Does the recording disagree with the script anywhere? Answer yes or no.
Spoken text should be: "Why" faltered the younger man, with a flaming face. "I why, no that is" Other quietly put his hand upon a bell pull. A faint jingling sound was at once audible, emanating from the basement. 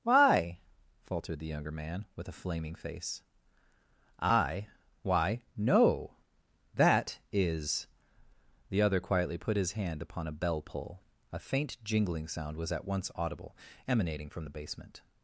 yes